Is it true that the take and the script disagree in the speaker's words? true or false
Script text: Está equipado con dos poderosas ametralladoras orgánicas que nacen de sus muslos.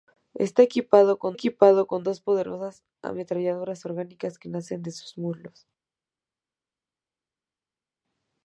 true